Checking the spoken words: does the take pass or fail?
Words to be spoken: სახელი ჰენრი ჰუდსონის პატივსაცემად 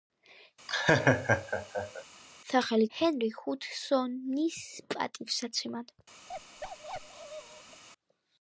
pass